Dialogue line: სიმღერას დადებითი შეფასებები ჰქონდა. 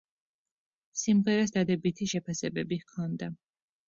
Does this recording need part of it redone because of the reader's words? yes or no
no